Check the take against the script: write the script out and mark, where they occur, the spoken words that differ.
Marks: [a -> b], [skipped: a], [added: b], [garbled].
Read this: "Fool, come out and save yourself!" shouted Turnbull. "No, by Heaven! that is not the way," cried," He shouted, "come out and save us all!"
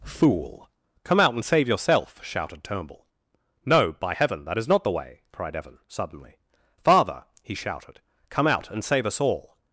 "Fool, come out and save yourself!" shouted Turnbull. "No, by Heaven! that is not the way," cried," [added: Evan suddenly Father] He shouted, "come out and save us all!"